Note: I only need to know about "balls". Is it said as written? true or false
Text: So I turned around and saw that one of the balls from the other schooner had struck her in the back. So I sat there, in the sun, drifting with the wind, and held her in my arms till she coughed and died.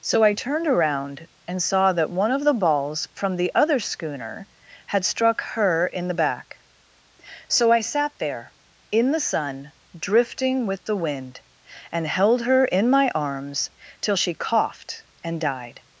true